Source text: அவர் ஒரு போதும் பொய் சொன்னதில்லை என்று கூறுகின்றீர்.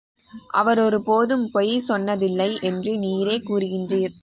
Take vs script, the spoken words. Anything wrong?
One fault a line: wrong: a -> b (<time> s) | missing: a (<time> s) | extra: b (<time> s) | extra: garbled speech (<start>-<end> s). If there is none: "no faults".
extra: நீரே (3.0 s)